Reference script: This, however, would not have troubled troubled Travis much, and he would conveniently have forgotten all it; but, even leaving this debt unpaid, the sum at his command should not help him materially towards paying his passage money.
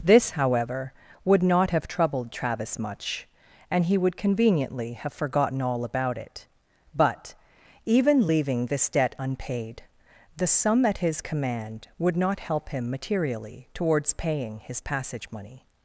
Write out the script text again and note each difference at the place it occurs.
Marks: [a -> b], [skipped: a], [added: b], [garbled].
This, however, would not have troubled [skipped: troubled] Travis much, and he would conveniently have forgotten all [added: about] it; but, even leaving this debt unpaid, the sum at his command [should -> would] not help him materially towards paying his passage money.